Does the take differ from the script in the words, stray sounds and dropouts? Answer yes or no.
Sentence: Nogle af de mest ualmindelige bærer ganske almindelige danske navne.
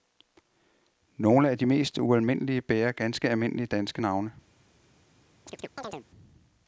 yes